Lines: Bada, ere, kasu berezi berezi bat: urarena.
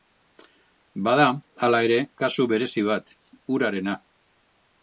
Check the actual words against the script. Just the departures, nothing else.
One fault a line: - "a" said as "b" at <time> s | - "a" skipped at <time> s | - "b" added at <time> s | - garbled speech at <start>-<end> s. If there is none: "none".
- "hala" added at 1.7 s
- "berezi" skipped at 2.9 s